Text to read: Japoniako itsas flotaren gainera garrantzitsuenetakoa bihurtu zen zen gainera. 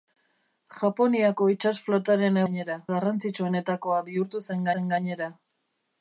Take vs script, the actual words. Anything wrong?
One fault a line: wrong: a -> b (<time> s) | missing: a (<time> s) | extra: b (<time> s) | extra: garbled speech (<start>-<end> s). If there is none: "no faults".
no faults